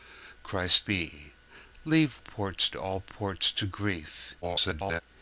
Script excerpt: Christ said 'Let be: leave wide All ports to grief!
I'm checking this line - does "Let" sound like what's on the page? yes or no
no